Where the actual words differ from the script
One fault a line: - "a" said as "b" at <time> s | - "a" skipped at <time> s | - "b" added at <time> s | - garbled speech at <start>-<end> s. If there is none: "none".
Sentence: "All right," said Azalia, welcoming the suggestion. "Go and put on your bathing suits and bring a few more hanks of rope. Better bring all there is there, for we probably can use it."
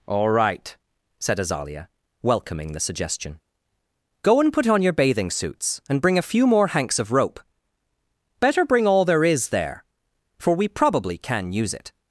none